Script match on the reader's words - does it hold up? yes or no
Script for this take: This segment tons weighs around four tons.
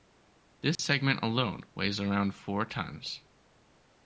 no